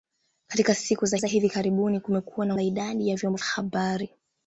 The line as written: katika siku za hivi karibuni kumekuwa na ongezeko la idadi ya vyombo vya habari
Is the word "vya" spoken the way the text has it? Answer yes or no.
no